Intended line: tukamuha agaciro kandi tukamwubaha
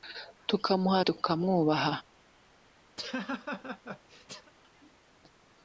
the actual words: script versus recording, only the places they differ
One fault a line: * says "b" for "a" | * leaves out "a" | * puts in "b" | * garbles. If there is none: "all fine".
* leaves out "agaciro kandi"